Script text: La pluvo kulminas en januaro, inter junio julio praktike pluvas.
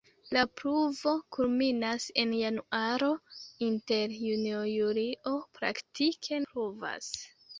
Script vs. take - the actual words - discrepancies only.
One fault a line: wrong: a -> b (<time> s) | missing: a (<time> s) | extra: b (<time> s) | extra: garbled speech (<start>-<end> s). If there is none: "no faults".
no faults